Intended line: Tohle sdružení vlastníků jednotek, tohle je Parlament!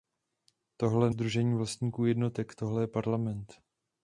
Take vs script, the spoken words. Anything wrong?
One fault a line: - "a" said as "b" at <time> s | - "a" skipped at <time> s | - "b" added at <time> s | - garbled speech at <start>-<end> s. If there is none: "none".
none